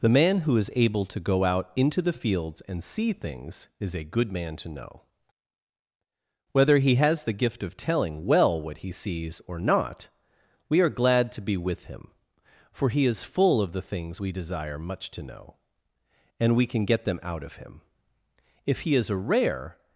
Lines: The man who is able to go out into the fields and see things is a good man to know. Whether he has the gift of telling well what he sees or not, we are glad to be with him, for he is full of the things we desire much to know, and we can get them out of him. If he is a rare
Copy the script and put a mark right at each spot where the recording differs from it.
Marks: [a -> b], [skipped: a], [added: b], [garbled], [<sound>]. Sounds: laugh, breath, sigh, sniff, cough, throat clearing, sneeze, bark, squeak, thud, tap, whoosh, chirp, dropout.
The man who is able to go out into the fields and see things is a good man to know. Whether he has the gift of telling well what he sees or not, we are glad to be with him, for he is full of the things we desire much to know, and we can get them out of him. If he is a rare